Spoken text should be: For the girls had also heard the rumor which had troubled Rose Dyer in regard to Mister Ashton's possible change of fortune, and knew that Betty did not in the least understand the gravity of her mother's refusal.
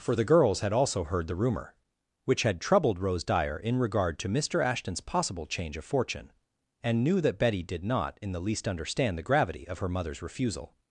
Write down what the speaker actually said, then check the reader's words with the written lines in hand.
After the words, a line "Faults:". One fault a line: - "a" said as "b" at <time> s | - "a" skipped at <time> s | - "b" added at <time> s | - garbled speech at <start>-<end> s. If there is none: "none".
For the girls had also heard the rumor which had troubled Rose Dyer in regard to Mister Ashton's possible change of fortune, and knew that Betty did not in the least understand the gravity of her mother's refusal.
Faults:
none